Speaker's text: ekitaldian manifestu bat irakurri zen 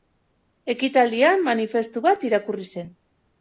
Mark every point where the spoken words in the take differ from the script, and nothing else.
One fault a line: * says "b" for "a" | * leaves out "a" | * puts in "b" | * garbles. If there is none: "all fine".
all fine